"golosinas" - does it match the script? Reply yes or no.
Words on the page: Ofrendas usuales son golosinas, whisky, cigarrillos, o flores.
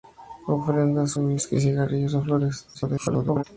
no